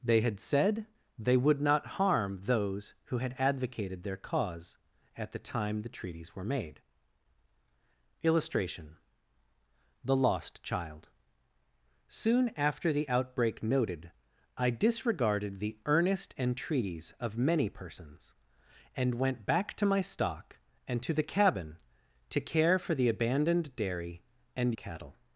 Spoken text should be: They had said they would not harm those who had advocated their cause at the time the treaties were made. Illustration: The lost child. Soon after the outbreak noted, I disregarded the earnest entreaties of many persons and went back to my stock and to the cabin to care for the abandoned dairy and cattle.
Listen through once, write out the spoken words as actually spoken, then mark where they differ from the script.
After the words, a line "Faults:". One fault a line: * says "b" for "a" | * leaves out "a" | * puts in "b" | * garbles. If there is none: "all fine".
They had said they would not harm those who had advocated their cause at the time the treaties were made. Illustration: The lost child. Soon after the outbreak noted, I disregarded the earnest entreaties of many persons and went back to my stock and to the cabin to care for the abandoned dairy and cattle.
Faults:
all fine